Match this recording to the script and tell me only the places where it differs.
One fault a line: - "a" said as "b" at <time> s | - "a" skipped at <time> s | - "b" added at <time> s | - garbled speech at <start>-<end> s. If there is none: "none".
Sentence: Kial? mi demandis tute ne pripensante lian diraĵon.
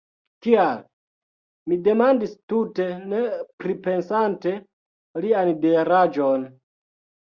none